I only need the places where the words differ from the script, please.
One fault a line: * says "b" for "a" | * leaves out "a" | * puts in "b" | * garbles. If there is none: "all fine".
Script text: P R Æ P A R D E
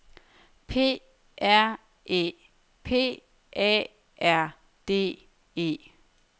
all fine